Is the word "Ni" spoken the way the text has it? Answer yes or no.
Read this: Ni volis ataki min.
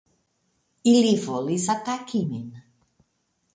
no